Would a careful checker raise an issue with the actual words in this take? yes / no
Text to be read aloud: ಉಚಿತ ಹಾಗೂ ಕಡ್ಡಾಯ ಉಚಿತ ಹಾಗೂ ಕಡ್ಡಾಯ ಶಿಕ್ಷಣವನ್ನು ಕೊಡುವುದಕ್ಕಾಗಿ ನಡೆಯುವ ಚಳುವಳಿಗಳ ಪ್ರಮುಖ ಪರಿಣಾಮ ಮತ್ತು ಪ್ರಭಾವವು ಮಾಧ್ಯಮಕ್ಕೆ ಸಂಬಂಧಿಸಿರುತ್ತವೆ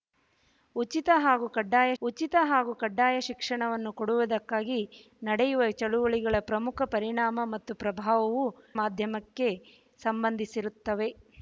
no